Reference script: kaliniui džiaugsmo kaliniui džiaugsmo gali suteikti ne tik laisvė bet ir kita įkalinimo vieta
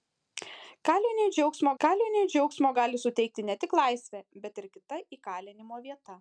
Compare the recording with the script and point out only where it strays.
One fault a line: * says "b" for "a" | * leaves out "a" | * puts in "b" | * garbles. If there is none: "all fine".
all fine